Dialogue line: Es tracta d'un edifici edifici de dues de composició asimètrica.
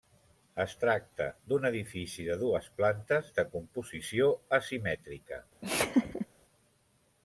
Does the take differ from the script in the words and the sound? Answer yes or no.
yes